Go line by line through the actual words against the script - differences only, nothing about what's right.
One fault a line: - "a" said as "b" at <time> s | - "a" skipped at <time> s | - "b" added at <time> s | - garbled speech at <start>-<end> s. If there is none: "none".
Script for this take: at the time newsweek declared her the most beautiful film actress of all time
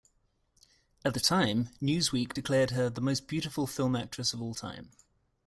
none